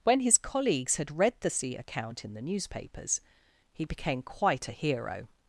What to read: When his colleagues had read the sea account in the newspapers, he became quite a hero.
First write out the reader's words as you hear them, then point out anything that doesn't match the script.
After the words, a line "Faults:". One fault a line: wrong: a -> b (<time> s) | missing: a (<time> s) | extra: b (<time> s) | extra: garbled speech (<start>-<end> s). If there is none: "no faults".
When his colleagues had read the sea account in the newspapers, he became quite a hero.
Faults:
no faults